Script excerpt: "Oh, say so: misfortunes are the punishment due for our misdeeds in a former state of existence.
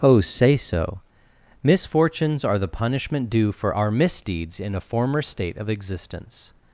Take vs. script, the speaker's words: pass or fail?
pass